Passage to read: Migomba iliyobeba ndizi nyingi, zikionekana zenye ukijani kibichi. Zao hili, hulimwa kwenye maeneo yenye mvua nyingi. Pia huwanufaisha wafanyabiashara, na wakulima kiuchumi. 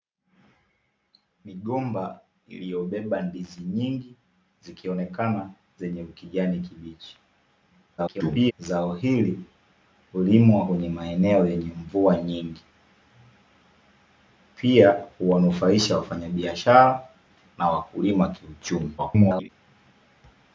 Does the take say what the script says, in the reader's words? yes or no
no